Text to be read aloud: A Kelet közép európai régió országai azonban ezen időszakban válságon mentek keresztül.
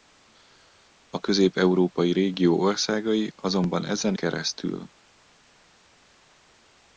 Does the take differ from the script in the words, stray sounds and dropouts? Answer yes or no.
yes